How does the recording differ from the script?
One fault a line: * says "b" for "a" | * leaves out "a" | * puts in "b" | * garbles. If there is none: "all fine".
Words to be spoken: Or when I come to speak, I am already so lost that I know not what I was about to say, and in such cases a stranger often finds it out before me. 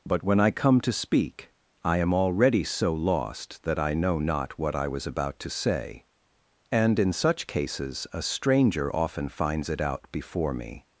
* says "But" for "Or"